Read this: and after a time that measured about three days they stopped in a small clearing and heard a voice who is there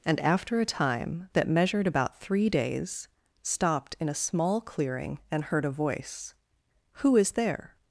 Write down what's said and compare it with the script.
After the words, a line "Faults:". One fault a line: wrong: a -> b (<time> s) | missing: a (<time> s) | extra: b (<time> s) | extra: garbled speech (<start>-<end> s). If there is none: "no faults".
and after a time that measured about three days stopped in a small clearing and heard a voice who is there
Faults:
missing: they (3.1 s)